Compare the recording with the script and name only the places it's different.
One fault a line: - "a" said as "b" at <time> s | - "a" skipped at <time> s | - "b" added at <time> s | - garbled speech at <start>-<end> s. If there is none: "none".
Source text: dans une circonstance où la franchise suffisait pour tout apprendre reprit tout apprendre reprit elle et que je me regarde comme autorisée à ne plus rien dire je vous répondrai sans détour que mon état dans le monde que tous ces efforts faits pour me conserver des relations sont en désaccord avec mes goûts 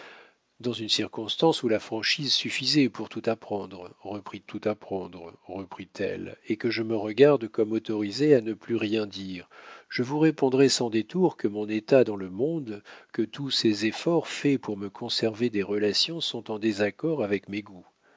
none